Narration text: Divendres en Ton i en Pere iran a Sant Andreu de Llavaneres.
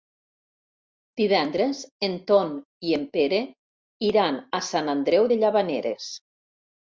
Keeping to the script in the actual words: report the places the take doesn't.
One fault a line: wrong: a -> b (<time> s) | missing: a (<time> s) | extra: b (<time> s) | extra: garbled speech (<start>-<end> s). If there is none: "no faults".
no faults